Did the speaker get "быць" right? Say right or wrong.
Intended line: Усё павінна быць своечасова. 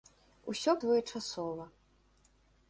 wrong